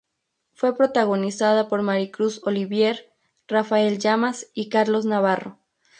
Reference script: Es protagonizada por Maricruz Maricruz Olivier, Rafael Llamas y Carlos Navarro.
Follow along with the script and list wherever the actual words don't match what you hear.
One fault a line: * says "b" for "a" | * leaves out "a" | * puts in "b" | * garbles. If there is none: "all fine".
* says "Fue" for "Es"
* leaves out "Maricruz"